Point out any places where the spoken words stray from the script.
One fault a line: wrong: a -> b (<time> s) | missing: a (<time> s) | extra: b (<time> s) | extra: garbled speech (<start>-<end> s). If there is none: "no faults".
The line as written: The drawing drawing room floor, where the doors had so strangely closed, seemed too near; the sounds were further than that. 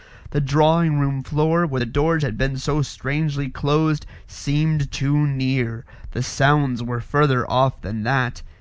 missing: drawing (1.0 s)
extra: been (2.4 s)
extra: off (7.5 s)